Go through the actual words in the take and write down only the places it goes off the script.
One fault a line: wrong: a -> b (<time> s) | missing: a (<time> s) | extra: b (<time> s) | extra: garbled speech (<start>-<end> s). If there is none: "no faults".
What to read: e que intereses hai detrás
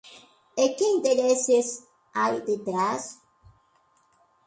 no faults